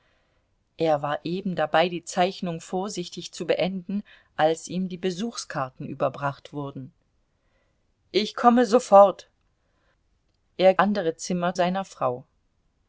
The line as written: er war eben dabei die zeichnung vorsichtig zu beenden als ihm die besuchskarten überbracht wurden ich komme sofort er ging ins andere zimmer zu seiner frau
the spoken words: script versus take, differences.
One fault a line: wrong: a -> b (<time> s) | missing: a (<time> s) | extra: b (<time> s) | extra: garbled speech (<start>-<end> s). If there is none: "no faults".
missing: ging ins (10.7 s)
missing: zu (11.5 s)